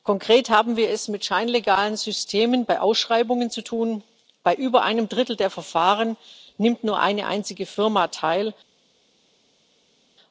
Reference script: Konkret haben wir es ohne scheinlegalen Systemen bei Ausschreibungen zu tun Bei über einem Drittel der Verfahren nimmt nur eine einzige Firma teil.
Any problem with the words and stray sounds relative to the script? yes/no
yes